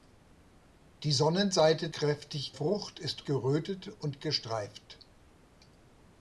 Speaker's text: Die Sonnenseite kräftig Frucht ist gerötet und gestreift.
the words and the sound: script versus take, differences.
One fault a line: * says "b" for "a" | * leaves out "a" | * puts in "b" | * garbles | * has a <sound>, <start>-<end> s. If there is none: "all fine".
all fine